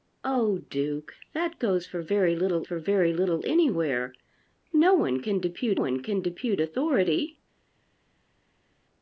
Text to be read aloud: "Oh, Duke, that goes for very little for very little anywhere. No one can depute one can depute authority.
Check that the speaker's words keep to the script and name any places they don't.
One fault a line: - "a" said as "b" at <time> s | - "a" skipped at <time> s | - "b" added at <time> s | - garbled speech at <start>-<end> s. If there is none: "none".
none